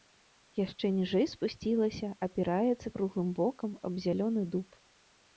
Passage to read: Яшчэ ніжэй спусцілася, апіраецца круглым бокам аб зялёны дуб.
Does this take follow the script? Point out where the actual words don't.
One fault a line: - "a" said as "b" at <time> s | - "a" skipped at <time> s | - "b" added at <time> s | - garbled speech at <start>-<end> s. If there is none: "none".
none